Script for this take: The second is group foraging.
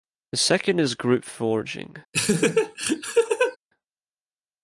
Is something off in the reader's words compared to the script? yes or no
no